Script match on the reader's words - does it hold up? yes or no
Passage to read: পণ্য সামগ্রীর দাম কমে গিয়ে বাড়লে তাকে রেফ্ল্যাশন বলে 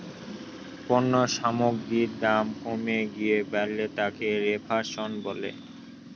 yes